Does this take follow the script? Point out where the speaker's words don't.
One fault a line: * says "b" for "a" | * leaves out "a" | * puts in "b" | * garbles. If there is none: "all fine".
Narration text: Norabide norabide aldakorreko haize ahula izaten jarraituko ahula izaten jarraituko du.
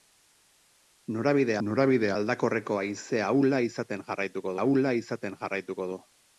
all fine